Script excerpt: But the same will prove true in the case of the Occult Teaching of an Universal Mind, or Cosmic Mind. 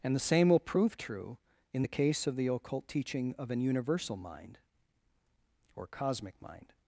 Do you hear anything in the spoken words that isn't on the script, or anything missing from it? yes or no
yes